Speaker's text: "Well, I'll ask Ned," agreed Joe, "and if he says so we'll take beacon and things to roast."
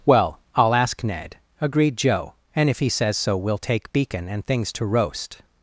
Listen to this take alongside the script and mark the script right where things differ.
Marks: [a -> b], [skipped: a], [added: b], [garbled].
"Well, I'll ask Ned," agreed Joe, "and if he says so we'll take beacon and things to roast."